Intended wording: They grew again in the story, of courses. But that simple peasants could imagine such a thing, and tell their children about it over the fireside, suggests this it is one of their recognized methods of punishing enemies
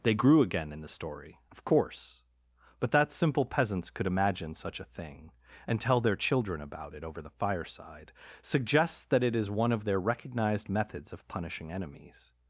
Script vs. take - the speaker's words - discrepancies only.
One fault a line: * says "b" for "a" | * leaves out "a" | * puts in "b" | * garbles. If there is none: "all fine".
* says "course" for "courses"
* says "that" for "this"